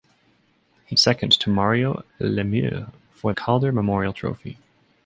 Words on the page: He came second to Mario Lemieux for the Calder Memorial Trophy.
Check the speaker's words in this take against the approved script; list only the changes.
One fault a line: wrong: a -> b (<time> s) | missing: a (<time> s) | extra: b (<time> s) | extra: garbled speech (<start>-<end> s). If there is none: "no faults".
missing: came (0.9 s)
missing: the (3.3 s)